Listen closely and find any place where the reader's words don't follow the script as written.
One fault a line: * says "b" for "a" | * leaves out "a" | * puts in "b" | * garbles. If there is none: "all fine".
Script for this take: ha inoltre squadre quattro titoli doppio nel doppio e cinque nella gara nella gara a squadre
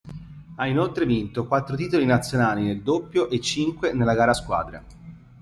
* says "vinto" for "squadre"
* says "nazionali" for "doppio"
* leaves out "nella gara"